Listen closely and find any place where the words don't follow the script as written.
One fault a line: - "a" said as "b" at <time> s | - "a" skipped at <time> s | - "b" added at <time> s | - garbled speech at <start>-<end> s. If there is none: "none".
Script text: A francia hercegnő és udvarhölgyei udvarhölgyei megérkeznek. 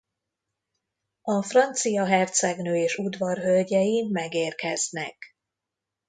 - "udvarhölgyei" skipped at 4.1 s